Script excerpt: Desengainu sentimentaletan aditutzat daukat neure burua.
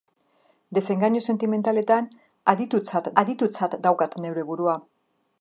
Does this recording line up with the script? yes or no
no